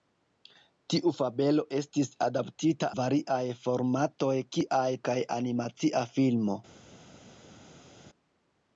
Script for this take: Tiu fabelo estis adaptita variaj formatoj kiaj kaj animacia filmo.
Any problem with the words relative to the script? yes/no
no